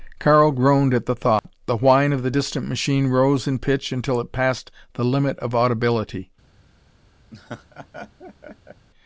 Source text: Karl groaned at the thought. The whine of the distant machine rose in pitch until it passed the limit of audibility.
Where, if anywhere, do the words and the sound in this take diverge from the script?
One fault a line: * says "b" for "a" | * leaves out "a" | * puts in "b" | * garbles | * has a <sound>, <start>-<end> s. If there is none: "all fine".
* has a dropout, 1.4-1.4 s
* has a laugh, 7.3-8.9 s